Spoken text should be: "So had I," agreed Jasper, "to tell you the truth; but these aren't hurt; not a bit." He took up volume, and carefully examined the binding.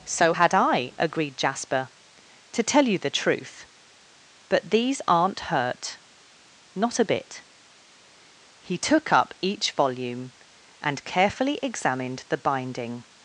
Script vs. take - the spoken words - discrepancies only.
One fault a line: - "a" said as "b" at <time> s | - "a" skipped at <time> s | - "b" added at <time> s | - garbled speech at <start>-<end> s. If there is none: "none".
- "each" added at 9.4 s